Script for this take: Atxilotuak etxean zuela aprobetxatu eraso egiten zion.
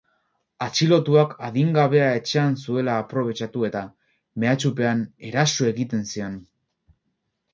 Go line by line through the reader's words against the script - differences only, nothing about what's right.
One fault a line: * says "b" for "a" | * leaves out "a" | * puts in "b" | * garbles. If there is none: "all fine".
* puts in "adingabea"
* puts in "eta mehatxupean"